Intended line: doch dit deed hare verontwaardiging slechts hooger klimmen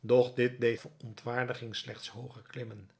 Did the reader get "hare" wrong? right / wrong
wrong